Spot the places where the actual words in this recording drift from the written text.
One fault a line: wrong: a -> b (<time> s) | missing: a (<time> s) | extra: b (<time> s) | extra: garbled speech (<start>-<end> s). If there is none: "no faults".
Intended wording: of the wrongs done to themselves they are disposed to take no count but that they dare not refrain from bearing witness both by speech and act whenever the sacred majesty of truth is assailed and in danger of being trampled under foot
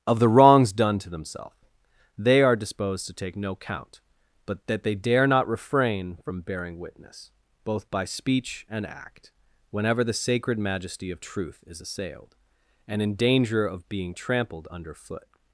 no faults